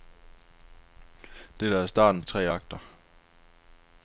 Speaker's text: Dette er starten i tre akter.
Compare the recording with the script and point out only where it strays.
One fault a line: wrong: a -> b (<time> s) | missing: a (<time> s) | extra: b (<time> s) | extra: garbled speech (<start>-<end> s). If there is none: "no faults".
no faults